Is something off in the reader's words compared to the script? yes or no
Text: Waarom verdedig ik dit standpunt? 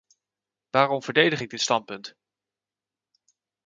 no